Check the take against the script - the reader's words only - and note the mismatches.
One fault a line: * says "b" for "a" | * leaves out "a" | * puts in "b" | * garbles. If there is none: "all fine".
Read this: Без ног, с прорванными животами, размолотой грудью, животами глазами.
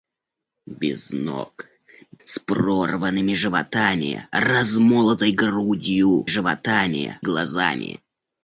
all fine